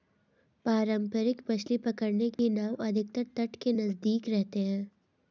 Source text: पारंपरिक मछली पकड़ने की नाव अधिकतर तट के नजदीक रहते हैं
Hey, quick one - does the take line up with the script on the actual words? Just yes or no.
yes